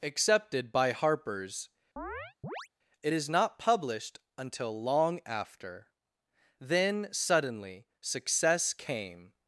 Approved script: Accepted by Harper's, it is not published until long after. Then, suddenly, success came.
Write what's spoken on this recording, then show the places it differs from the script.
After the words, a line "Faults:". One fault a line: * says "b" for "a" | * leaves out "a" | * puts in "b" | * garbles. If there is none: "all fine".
Accepted by Harper's, it is not published until long after. Then, suddenly, success came.
Faults:
all fine